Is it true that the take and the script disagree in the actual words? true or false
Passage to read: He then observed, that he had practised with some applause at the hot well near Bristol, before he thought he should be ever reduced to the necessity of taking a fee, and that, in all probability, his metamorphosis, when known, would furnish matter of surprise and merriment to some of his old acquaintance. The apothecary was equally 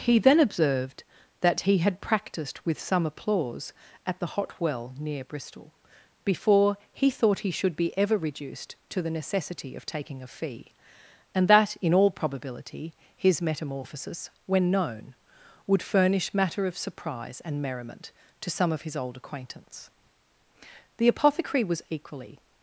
false